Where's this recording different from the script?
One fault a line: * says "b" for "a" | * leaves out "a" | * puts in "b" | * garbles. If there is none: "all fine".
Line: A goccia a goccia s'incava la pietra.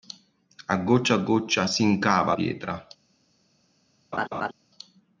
* leaves out "la"